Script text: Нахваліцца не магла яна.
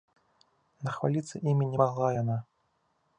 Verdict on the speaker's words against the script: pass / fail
fail